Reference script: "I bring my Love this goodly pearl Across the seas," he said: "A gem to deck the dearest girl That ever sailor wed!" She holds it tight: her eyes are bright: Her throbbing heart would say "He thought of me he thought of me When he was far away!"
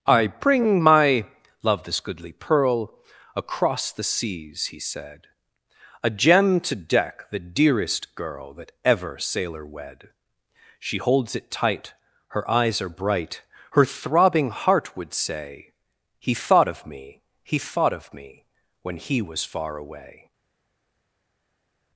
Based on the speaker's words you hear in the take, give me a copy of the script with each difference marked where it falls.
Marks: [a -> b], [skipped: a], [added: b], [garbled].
"I bring my Love this goodly pearl Across the seas," he said: "A gem to deck the dearest girl That ever sailor wed!" She holds it tight: her eyes are bright: Her throbbing heart would say "He thought of me he thought of me When he was far away!"